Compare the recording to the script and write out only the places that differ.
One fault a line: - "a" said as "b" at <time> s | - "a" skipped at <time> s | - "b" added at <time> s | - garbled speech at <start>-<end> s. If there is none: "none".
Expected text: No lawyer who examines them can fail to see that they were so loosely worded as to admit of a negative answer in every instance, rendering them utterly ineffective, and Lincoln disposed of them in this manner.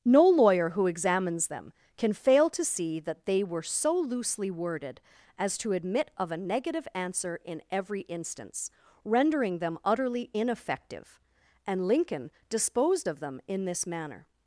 none